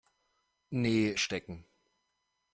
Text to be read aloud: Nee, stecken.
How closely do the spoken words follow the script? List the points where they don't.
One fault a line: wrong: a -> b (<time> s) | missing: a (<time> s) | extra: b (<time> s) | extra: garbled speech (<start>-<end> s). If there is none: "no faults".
no faults